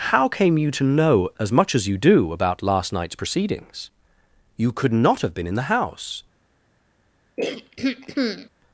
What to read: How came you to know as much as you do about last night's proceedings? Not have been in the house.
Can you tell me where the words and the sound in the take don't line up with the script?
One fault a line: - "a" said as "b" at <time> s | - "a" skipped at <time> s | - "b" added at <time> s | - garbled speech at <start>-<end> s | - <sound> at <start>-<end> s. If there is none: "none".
- "You could" added at 4.6 s
- throat clearing at 7.4-8.5 s